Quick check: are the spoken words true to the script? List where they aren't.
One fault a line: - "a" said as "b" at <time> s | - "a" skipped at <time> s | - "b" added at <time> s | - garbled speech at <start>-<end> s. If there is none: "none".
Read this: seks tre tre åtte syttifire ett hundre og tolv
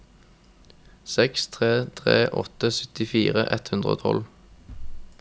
none